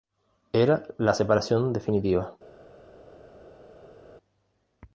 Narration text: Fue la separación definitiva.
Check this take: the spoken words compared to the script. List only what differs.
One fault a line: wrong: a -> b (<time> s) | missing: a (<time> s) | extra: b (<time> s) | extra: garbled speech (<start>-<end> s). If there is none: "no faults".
wrong: Fue -> Era (0.5 s)